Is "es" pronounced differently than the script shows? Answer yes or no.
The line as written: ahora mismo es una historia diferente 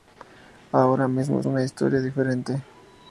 yes